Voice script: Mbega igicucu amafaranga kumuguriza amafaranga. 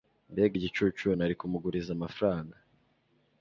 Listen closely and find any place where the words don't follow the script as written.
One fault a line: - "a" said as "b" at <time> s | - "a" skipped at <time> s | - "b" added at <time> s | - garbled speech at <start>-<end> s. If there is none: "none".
- "amafaranga" said as "nari" at 1.2 s